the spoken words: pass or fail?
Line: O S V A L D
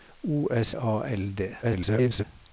fail